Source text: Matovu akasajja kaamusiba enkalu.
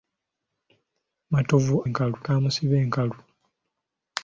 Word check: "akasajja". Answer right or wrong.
wrong